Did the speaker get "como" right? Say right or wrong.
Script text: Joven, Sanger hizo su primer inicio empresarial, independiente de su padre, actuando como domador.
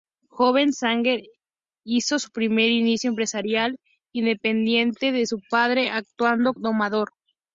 wrong